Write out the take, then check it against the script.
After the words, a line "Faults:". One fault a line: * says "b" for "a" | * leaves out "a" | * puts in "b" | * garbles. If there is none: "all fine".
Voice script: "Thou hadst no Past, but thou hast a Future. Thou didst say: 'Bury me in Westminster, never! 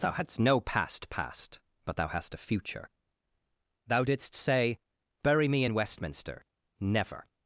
"Thou hadst no Past Past, but thou hast a Future. Thou didst say: 'Bury me in Westminster, never!
Faults:
* puts in "Past"